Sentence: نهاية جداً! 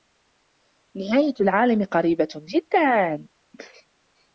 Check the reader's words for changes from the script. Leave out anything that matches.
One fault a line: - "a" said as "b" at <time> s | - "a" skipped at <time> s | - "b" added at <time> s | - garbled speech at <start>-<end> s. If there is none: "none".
- "العالم قريبة" added at 1.4 s